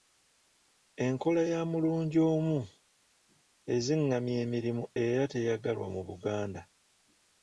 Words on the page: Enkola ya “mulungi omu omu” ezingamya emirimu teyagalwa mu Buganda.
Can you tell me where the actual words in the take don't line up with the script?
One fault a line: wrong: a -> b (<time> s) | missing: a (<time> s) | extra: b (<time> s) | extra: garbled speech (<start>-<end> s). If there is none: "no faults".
missing: omu (2.6 s)
extra: era (5.0 s)